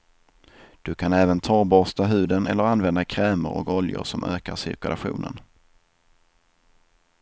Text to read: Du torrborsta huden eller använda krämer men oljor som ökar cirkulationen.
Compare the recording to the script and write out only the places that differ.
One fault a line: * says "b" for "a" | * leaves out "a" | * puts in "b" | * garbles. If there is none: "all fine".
* puts in "kan även"
* says "och" for "men"